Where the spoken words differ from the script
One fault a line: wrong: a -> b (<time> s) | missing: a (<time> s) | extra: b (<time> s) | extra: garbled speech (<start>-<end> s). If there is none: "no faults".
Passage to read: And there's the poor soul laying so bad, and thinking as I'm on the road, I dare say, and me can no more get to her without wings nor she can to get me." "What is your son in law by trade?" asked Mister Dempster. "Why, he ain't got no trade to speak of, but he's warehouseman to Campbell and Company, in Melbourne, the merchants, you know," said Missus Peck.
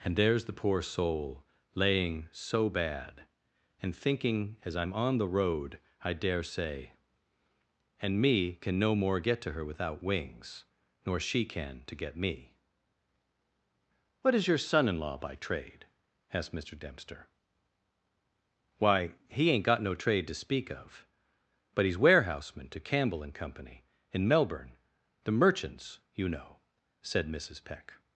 no faults